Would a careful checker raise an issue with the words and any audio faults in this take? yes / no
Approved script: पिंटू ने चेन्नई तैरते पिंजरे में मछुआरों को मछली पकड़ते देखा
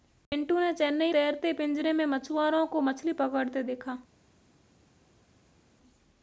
no